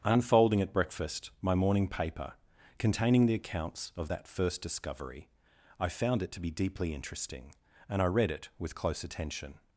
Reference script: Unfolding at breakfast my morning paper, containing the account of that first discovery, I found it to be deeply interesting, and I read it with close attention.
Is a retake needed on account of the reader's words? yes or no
yes